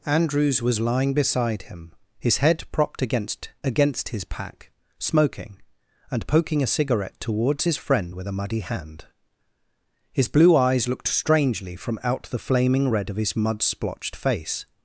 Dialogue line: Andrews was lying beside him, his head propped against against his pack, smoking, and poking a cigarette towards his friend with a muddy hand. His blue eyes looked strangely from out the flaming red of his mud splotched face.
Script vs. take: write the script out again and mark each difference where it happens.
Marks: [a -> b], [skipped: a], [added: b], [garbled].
Andrews was lying beside him, his head propped against against his pack, smoking, and poking a cigarette towards his friend with a muddy hand. His blue eyes looked strangely from out the flaming red of his mud splotched face.